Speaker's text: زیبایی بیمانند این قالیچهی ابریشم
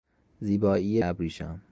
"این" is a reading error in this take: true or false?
true